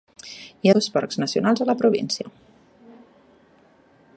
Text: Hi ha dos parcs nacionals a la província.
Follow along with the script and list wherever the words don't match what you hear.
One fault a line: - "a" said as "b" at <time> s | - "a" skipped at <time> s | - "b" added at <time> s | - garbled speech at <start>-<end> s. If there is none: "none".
none